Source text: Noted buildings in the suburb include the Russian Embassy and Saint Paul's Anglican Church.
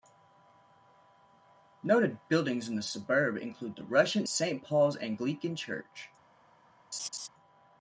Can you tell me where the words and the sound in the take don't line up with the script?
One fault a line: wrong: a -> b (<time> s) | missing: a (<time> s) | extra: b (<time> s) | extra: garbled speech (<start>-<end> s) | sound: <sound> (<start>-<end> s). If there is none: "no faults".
missing: Embassy and (4.3 s)
sound: laugh (6.9-7.3 s)